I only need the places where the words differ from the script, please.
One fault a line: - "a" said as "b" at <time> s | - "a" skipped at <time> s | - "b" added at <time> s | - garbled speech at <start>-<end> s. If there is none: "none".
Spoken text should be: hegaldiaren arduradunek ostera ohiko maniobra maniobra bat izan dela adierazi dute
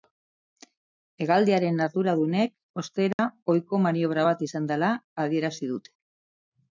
- "maniobra" skipped at 4.2 s